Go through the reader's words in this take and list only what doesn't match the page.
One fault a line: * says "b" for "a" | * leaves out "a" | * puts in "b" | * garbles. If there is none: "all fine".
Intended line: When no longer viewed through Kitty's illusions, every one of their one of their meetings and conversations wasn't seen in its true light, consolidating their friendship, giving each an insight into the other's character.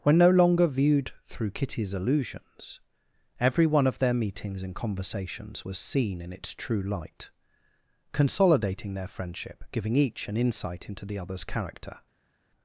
* leaves out "one of their"
* says "was" for "wasn't"